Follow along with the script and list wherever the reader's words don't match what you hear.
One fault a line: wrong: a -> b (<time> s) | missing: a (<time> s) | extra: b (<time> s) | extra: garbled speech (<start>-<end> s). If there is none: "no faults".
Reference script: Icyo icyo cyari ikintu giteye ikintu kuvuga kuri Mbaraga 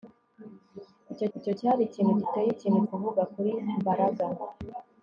no faults